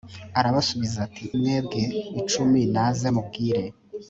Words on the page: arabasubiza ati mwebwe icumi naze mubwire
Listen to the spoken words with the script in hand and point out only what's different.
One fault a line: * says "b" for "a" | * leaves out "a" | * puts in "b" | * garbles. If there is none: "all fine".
all fine